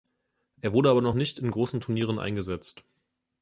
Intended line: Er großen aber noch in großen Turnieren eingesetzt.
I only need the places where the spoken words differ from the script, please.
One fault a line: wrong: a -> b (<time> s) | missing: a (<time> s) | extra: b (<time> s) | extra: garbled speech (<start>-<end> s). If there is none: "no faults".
wrong: großen -> wurde (0.7 s)
extra: nicht (1.1 s)